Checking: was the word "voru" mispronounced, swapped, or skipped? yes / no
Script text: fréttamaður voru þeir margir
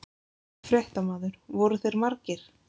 no